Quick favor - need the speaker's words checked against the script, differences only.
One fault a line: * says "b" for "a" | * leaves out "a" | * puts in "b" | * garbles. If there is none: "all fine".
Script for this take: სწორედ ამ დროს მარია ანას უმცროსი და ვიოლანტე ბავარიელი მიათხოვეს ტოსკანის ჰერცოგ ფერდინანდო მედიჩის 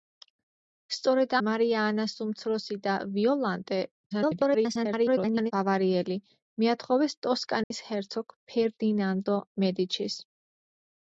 * leaves out "ამ დროს"
* garbles